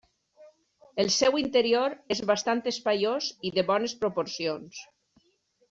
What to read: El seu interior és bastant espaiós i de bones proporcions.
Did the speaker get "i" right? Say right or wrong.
right